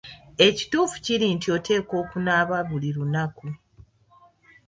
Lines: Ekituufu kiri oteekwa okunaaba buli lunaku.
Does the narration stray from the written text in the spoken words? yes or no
yes